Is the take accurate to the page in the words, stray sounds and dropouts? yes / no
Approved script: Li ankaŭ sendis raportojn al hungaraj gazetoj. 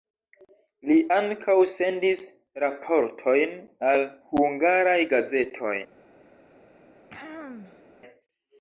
no